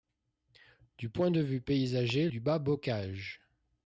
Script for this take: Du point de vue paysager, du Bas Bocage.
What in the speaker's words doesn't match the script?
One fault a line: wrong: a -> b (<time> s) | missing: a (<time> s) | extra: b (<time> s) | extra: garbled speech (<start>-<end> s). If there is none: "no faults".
no faults